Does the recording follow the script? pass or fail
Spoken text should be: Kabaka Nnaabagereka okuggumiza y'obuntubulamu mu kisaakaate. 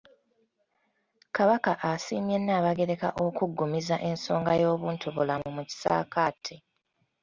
fail